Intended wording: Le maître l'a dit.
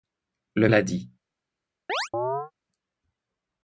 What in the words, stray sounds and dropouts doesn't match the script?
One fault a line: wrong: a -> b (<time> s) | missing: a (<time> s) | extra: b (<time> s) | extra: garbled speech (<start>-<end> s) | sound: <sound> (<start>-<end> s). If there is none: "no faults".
missing: maître (0.7 s)
sound: chirp (1.9-2.5 s)